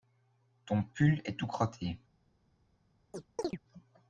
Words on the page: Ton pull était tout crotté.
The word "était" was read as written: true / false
false